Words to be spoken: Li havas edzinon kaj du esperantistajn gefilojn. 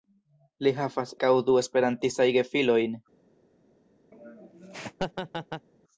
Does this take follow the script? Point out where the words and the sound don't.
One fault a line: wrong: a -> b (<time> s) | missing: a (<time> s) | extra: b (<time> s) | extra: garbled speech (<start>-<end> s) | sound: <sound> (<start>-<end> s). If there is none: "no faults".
missing: edzinon (1.1 s)
sound: laugh (4.1-5.7 s)